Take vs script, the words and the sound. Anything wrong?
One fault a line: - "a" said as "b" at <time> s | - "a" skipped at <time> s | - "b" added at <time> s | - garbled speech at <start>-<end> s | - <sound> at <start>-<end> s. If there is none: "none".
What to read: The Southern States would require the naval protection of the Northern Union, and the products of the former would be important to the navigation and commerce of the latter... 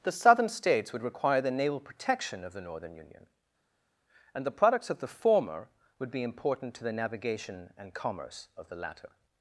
none